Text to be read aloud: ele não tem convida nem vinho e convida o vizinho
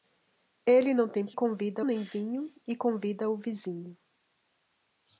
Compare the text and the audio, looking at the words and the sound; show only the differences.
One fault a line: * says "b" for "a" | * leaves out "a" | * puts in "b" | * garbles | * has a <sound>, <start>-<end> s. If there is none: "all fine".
all fine